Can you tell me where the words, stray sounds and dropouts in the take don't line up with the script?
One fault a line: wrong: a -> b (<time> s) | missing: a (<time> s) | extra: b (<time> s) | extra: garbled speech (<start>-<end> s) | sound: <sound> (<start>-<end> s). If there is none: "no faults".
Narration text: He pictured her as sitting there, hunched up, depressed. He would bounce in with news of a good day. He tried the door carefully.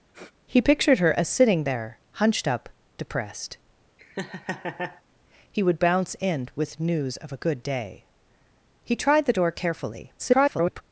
sound: sniff (0.1-0.3 s)
sound: laugh (4.0-5.0 s)
extra: garbled speech (10.2-10.8 s)